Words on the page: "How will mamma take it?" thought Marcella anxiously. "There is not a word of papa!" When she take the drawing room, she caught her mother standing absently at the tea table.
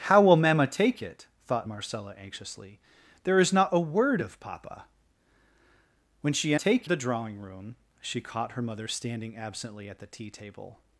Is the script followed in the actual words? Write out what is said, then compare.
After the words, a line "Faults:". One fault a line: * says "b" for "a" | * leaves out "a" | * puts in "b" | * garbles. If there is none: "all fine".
"How will mamma take it?" thought Marcella anxiously. "There is not a word of papa!" When she take the drawing room, she caught her mother standing absently at the tea table.
Faults:
all fine